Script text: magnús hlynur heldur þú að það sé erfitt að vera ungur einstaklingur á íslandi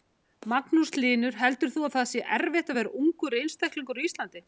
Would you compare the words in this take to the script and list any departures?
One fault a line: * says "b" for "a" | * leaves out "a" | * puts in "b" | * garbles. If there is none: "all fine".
all fine